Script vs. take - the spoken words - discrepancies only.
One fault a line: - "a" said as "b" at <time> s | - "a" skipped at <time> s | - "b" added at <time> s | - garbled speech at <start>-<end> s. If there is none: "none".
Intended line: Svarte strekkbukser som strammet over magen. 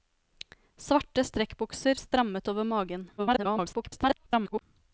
- "som" skipped at 2.0 s
- garbled speech at 3.2-4.6 s